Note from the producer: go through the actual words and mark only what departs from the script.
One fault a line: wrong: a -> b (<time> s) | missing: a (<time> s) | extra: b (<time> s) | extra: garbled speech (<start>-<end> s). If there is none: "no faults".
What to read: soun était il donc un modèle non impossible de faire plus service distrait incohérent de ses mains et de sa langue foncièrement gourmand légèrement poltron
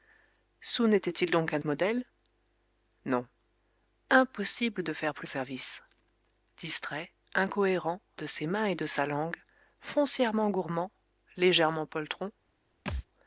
no faults